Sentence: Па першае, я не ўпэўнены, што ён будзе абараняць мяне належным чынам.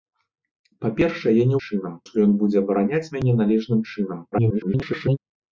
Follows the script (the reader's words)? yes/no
no